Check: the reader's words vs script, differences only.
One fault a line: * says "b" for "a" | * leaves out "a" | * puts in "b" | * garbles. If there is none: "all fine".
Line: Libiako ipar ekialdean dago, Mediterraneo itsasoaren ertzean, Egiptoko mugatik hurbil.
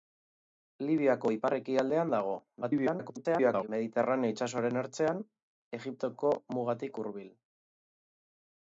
* garbles